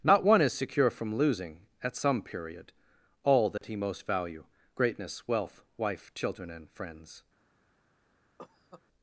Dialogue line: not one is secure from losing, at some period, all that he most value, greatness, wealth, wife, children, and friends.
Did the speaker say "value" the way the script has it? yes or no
yes